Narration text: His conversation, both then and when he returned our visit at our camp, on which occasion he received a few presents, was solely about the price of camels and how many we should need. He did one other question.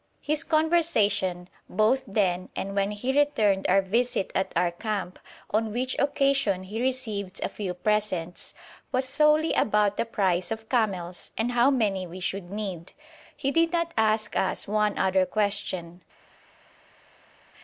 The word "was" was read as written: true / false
true